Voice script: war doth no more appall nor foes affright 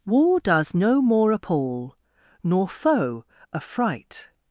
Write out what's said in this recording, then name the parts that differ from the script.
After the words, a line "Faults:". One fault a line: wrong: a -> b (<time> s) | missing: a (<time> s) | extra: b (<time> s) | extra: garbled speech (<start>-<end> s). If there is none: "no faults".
war does no more appall nor foe affright
Faults:
wrong: doth -> does (0.4 s)
wrong: foes -> foe (2.7 s)